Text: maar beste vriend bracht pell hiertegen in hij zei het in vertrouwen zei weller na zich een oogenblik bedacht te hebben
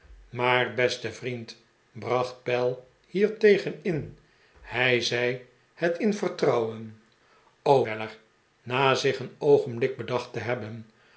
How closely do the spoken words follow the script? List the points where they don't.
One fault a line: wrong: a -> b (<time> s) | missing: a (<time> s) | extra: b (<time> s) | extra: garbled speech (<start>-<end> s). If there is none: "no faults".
missing: zei (7.0 s)